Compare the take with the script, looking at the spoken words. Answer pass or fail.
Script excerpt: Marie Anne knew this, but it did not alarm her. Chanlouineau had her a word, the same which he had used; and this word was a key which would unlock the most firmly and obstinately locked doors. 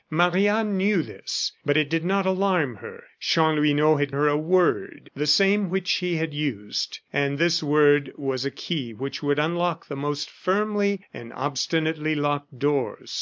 pass